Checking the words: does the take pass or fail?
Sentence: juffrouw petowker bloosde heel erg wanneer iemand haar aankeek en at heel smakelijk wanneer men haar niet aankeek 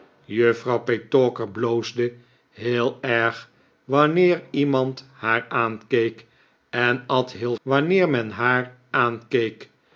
fail